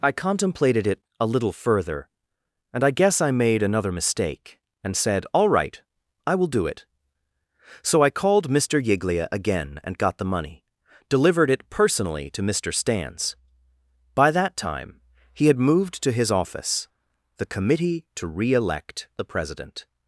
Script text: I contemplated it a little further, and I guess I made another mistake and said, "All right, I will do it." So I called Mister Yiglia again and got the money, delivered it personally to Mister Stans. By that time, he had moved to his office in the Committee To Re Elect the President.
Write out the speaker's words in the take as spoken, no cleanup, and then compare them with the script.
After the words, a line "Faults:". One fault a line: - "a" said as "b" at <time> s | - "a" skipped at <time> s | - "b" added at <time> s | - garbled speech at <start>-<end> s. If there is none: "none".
I contemplated it a little further, and I guess I made another mistake and said, "All right, I will do it." So I called Mister Yiglia again and got the money, delivered it personally to Mister Stans. By that time, he had moved to his office the Committee To Re Elect the President.
Faults:
- "in" skipped at 16.9 s